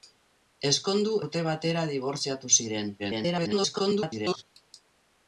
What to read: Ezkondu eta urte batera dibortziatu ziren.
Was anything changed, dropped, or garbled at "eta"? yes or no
yes